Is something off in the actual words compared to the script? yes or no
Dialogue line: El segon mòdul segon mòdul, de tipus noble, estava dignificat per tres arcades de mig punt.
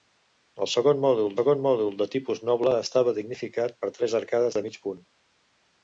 no